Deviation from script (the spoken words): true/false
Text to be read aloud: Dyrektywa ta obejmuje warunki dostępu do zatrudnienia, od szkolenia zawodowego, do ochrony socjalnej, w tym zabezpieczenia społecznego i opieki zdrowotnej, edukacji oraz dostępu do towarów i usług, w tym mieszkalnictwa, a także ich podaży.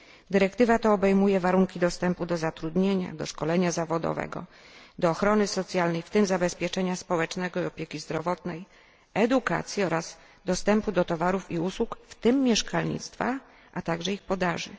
true